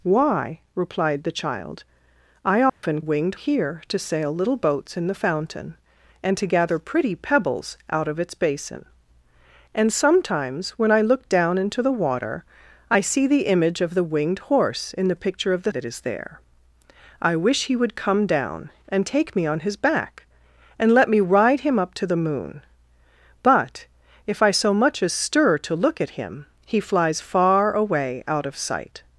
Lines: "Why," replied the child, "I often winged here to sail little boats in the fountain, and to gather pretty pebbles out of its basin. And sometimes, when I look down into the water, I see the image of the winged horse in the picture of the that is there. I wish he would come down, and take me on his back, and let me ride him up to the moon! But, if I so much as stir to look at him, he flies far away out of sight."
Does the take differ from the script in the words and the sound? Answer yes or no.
yes